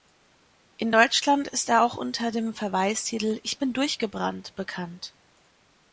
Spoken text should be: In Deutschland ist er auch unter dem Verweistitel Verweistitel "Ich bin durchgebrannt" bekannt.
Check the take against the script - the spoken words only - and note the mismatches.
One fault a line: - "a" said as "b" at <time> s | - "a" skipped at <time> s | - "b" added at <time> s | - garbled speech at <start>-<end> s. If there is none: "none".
- "Verweistitel" skipped at 3.4 s